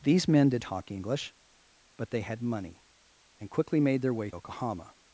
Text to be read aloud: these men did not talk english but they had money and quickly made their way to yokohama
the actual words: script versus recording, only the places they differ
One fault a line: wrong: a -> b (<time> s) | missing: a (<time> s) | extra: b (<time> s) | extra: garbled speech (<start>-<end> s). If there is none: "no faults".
missing: not (0.6 s)
missing: to (4.3 s)